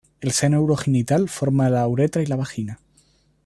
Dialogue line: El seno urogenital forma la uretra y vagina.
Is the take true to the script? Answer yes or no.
no